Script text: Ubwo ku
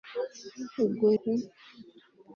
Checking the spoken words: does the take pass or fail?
pass